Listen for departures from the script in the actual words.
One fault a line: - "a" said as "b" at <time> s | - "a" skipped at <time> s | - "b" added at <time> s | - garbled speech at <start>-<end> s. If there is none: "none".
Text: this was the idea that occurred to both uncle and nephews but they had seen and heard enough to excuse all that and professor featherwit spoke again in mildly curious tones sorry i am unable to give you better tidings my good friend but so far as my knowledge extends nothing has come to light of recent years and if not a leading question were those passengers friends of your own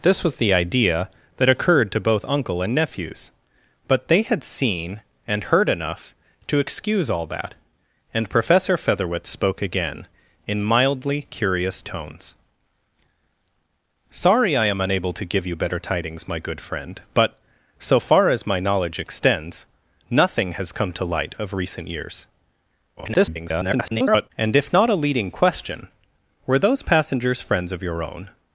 - garbled speech at 23.0-24.3 s